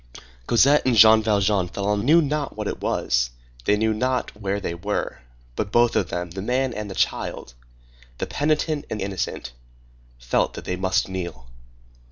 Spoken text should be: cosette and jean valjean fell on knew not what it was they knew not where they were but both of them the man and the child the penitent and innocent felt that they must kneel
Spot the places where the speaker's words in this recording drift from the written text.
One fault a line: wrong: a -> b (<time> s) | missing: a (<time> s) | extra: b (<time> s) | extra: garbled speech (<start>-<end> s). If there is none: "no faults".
no faults